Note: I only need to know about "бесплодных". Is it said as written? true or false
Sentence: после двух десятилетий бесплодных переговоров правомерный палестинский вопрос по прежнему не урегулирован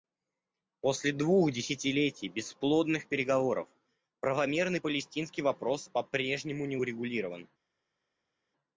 true